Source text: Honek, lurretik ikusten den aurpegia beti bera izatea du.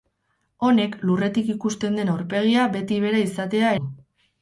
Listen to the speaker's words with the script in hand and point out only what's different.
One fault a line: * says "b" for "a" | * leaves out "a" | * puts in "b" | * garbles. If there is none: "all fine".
all fine